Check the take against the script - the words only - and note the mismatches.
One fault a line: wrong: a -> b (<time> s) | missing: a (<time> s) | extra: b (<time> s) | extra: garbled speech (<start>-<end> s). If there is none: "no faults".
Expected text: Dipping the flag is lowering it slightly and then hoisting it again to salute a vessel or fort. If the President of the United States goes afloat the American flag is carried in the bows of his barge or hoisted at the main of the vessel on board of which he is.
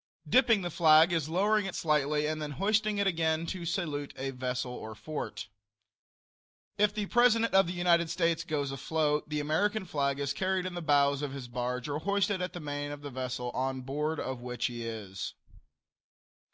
no faults